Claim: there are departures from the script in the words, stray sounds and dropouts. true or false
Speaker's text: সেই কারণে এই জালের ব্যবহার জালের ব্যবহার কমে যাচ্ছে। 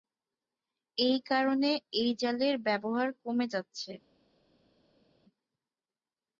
true